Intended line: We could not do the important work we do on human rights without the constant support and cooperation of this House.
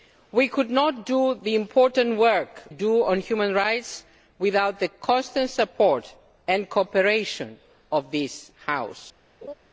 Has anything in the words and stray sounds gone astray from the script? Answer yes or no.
yes